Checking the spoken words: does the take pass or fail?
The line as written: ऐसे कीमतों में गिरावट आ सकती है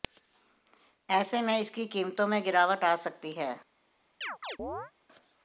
fail